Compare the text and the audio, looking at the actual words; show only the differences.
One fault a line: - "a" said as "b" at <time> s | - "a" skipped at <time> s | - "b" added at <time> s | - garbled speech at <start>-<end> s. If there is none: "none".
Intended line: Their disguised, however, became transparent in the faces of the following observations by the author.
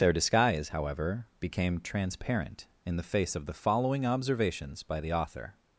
- "disguised" said as "disguise" at 0.1 s
- "faces" said as "face" at 3.0 s